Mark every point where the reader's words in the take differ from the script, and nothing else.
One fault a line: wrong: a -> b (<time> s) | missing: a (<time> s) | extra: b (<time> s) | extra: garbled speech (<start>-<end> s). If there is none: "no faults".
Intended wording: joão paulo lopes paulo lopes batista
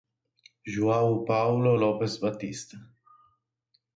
missing: paulo lopes (2.2 s)